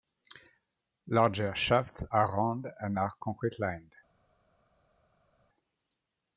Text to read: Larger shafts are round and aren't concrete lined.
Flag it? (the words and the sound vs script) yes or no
yes